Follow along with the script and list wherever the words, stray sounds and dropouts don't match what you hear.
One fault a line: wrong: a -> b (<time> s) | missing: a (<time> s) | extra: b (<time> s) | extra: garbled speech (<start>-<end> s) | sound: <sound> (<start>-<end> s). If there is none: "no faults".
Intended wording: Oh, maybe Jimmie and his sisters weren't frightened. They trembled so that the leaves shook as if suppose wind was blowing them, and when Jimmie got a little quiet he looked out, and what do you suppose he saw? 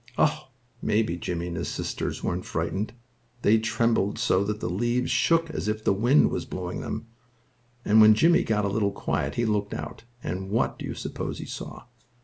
wrong: suppose -> the (5.8 s)